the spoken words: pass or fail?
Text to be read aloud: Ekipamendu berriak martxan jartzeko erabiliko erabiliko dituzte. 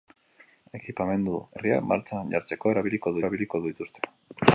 pass